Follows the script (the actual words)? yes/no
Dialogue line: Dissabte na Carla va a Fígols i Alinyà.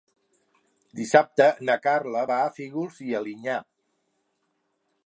yes